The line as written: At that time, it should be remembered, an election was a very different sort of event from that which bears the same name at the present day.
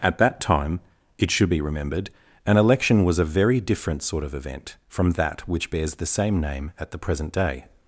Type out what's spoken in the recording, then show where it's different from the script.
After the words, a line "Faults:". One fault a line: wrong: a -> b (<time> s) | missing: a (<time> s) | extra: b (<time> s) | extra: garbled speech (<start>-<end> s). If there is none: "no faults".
At that time, it should be remembered, an election was a very different sort of event from that which bears the same name at the present day.
Faults:
no faults